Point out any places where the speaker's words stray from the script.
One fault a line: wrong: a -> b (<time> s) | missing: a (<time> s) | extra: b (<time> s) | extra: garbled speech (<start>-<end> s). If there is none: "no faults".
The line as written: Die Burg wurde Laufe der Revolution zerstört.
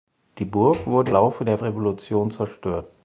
no faults